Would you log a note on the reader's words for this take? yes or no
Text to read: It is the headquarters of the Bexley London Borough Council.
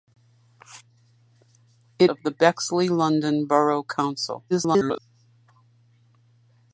yes